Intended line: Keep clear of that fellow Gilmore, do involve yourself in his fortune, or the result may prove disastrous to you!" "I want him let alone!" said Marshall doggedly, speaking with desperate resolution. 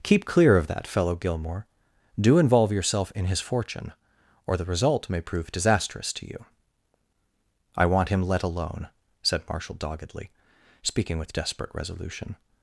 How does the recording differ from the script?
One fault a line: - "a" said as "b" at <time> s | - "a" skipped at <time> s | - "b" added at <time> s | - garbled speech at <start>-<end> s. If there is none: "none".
none